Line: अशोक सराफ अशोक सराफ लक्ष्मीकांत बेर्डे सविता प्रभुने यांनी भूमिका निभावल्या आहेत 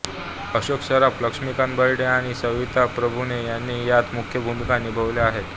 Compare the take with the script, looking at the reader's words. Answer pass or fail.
fail